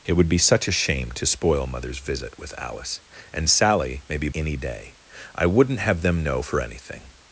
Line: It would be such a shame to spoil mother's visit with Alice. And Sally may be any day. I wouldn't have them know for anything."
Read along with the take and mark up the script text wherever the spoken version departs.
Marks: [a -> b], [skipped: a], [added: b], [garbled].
It would be such a shame to spoil mother's visit with Alice. And Sally may be any day. I wouldn't have them know for anything."